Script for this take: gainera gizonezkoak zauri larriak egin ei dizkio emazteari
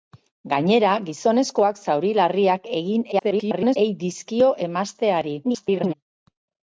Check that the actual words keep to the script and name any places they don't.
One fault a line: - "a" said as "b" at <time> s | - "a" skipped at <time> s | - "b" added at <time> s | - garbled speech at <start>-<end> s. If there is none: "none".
- garbled speech at 3.1-3.8 s
- garbled speech at 5.4-5.9 s